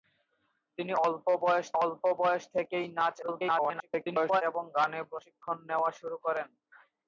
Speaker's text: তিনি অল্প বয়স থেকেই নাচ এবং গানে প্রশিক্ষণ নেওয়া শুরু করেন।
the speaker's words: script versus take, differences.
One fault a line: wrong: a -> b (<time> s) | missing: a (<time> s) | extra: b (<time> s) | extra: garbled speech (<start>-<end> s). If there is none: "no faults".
extra: অল্প বয়স (1.8 s)
extra: garbled speech (3.2-4.4 s)